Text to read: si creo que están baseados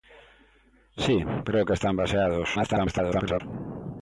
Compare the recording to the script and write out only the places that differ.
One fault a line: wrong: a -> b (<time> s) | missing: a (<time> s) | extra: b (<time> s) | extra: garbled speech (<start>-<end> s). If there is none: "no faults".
extra: garbled speech (2.5-3.4 s)